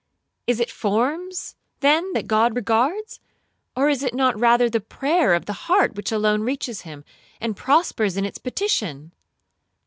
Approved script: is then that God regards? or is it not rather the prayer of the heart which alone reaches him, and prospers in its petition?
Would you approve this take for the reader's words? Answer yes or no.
no